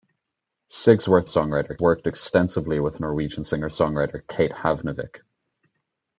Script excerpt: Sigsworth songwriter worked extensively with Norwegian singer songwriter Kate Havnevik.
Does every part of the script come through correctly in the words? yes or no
yes